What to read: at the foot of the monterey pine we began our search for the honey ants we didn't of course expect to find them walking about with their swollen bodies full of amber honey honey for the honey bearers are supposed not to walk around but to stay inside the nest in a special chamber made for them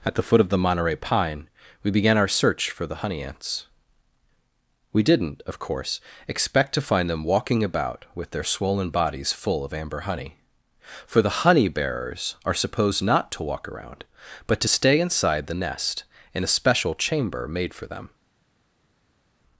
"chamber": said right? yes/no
yes